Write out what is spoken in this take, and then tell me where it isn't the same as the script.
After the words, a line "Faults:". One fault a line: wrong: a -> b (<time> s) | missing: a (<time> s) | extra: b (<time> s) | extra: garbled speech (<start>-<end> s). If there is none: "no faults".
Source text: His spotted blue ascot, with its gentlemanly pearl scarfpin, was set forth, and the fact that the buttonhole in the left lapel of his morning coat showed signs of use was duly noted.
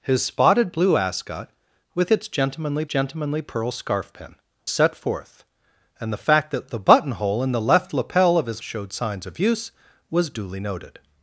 His spotted blue ascot, with its gentlemanly gentlemanly pearl scarfpin, set forth, and the fact that the buttonhole in the left lapel of his showed signs of use was duly noted.
Faults:
extra: gentlemanly (2.8 s)
missing: was (4.4 s)
missing: morning coat (8.6 s)